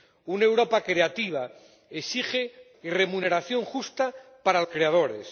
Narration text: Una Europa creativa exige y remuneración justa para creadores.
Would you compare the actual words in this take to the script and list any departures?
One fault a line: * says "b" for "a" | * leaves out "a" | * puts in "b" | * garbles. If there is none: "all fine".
all fine